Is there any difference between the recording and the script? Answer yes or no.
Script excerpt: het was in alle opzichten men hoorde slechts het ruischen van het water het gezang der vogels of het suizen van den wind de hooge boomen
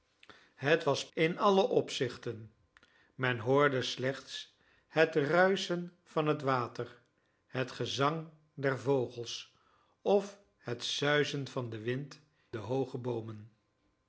no